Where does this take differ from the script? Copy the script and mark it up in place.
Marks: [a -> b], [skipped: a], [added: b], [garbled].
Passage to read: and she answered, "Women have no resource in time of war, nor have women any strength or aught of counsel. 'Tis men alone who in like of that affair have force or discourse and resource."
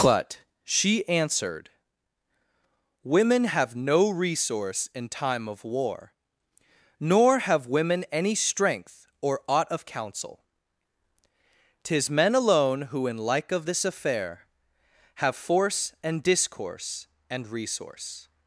[and -> but] she answered, "Women have no resource in time of war, nor have women any strength or aught of counsel. 'Tis men alone who in like of [that -> this] affair have force [or -> and] discourse and resource."